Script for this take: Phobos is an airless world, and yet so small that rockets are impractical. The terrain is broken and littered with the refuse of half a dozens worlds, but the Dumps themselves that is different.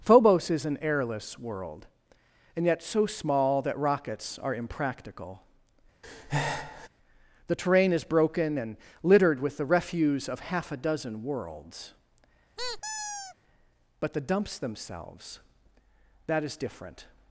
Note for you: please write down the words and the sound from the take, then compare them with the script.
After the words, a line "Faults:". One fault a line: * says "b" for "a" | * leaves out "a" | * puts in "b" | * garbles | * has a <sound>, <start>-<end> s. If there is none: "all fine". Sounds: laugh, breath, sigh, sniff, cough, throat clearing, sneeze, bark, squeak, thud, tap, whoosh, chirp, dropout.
Phobos is an airless world, and yet so small that rockets are impractical. The terrain is broken and littered with the refuse of half a dozen worlds, but the Dumps themselves that is different.
Faults:
* has a breath, 6.0-6.9 s
* says "dozen" for "dozens"
* has a squeak, 12.6-13.4 s